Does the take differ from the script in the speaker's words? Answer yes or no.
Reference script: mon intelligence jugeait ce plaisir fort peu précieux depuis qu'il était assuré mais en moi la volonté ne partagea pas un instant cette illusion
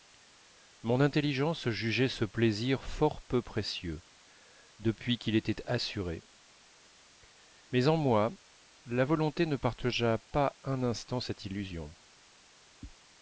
no